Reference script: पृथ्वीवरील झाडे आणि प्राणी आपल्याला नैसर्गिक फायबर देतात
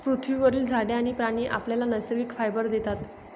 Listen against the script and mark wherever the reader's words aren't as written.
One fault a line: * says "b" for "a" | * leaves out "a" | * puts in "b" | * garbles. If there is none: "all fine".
all fine